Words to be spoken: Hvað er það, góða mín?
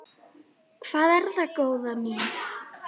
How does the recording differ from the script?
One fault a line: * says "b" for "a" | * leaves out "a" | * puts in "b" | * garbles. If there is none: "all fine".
all fine